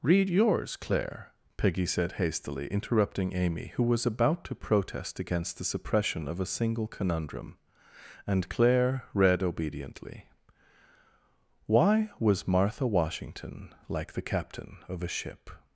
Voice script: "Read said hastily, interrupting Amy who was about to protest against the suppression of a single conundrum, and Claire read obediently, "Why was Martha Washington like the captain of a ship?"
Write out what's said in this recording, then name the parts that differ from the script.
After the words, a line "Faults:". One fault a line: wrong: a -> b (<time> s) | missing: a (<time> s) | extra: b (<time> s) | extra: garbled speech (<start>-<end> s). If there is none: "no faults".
"Read yours, Claire," Peggy said hastily, interrupting Amy who was about to protest against the suppression of a single conundrum, and Claire read obediently, "Why was Martha Washington like the captain of a ship?"
Faults:
extra: yours Claire Peggy (0.3 s)